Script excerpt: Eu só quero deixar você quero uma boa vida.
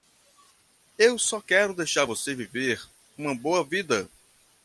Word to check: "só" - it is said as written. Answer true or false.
true